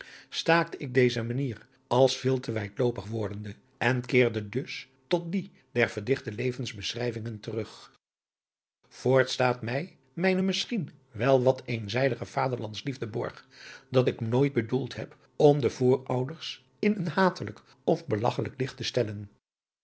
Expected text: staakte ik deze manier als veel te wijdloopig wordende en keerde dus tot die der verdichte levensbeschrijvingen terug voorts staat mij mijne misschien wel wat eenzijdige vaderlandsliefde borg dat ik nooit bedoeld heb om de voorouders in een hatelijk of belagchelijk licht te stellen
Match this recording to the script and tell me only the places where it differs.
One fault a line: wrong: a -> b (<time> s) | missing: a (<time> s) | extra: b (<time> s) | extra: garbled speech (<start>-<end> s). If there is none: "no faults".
no faults